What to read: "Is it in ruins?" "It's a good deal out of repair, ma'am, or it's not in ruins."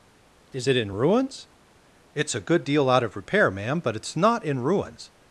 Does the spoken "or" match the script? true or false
false